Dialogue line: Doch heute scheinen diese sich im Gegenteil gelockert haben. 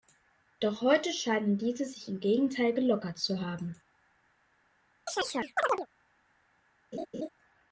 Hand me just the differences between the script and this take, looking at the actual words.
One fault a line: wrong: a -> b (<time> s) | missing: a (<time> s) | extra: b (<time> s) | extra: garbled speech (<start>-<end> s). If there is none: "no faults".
extra: zu (3.2 s)